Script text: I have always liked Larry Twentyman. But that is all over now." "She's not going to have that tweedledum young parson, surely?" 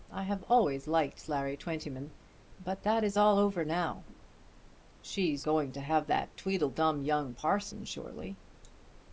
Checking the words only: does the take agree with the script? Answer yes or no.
no